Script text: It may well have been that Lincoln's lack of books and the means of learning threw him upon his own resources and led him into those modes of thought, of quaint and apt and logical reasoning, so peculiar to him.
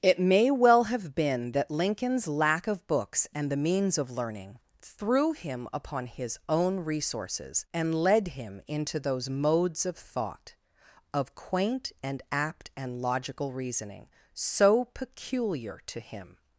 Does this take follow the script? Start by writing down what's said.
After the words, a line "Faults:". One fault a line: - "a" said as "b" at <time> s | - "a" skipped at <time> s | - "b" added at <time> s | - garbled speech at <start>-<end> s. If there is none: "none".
It may well have been that Lincoln's lack of books and the means of learning threw him upon his own resources and led him into those modes of thought, of quaint and apt and logical reasoning, so peculiar to him.
Faults:
none